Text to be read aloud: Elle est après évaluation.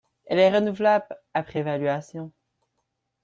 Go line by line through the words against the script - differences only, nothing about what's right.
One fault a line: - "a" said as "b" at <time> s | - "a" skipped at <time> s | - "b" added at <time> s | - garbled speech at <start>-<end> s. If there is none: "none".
- "renouvelable" added at 0.5 s